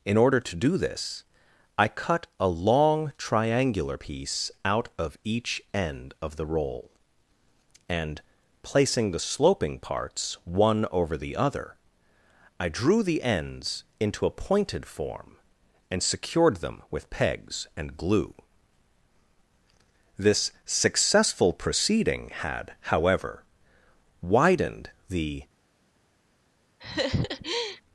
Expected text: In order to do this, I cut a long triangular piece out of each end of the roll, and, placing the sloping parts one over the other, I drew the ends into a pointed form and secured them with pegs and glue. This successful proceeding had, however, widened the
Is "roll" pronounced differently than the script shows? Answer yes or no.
no